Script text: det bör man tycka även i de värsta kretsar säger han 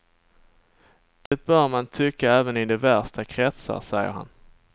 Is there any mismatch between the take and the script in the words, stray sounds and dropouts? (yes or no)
yes